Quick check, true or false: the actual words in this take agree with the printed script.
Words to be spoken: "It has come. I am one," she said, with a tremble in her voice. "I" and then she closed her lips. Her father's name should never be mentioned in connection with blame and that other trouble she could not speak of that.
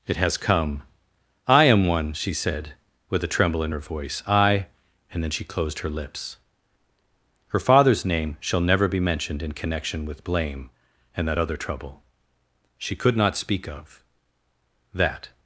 false